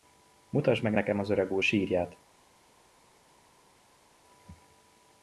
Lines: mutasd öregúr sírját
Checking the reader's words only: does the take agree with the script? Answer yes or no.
no